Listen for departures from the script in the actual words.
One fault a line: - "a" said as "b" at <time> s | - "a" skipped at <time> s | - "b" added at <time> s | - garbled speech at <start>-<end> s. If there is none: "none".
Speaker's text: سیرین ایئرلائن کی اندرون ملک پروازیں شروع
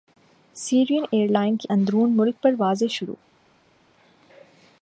none